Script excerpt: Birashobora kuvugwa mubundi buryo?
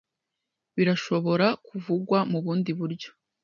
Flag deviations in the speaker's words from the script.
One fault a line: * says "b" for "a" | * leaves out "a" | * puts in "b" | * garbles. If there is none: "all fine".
all fine